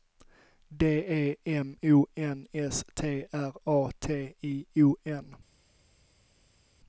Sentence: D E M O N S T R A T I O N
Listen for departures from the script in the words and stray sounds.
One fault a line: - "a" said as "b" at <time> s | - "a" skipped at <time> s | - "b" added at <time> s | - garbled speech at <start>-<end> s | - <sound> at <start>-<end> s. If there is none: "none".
none